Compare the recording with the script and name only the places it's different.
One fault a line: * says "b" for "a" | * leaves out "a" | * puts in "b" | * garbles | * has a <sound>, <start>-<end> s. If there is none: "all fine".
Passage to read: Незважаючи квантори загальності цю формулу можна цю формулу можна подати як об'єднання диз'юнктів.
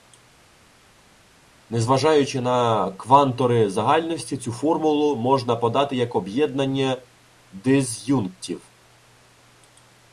* puts in "на"
* leaves out "цю формулу можна"